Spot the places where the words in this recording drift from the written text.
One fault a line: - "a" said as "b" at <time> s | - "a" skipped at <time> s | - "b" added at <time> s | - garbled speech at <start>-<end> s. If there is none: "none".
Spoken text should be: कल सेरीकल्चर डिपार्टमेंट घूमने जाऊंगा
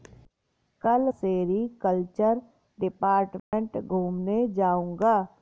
none